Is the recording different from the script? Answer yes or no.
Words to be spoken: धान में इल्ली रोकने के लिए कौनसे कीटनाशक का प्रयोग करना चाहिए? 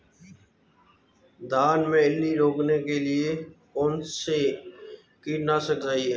yes